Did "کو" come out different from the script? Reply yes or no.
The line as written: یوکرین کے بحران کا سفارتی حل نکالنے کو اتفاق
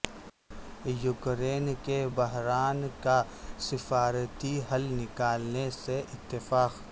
yes